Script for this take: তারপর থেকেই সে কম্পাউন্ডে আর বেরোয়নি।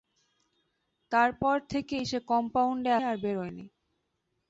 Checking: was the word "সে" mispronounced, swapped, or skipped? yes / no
no